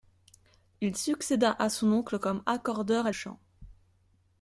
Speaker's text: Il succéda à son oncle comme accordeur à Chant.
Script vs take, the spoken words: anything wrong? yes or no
no